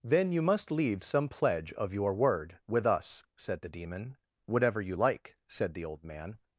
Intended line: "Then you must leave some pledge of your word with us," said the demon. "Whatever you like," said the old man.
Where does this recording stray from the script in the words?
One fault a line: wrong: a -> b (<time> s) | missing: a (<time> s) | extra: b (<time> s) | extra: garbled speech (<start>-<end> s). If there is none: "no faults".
no faults